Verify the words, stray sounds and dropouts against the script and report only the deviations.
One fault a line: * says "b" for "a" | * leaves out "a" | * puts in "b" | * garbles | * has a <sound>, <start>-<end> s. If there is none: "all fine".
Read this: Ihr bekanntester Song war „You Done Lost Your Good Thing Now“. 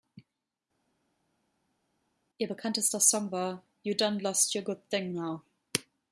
all fine